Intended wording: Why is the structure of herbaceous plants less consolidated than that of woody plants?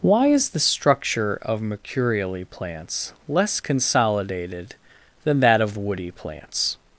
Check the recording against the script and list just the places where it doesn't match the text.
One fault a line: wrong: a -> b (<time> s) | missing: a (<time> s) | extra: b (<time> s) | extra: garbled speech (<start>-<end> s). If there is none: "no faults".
wrong: herbaceous -> mercurially (1.6 s)